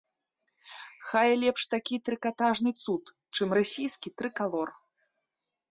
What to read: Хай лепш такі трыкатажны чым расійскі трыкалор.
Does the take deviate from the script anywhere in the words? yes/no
yes